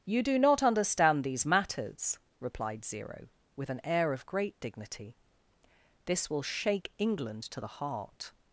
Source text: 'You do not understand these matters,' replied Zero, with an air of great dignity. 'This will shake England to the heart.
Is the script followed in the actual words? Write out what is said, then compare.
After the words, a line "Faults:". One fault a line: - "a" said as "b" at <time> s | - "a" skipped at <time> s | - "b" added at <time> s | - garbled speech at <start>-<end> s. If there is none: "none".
'You do not understand these matters,' replied Zero, with an air of great dignity. 'This will shake England to the heart.
Faults:
none